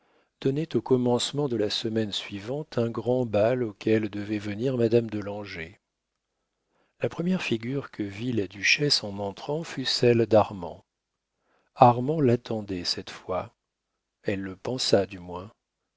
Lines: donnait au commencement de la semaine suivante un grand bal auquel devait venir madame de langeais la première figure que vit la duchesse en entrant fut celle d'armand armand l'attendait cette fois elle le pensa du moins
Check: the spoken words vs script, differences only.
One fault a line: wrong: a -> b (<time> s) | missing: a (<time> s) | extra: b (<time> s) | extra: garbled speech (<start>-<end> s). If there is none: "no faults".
no faults